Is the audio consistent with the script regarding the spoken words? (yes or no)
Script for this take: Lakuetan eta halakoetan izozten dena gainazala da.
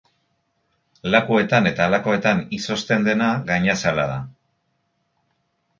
yes